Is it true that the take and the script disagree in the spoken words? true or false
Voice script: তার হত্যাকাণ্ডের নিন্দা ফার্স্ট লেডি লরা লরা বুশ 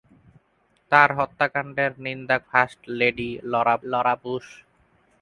false